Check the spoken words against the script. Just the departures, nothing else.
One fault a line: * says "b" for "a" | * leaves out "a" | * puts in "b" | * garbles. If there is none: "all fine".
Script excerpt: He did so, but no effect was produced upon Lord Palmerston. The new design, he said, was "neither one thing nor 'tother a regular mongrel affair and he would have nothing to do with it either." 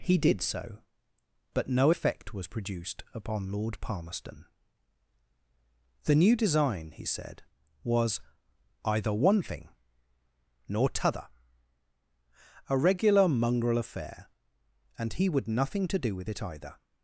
* says "either" for "neither"
* leaves out "have"